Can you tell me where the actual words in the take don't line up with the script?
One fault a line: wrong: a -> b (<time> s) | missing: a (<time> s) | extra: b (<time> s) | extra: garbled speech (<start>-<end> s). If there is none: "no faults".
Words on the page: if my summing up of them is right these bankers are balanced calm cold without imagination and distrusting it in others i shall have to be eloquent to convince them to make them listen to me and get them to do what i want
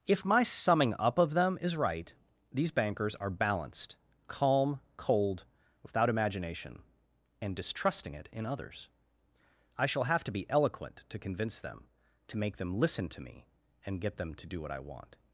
no faults